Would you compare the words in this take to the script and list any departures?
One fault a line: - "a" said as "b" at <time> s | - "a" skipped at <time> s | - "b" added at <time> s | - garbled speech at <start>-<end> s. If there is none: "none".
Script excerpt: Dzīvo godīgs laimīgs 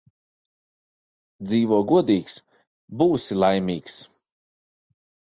- "būsi" added at 3.0 s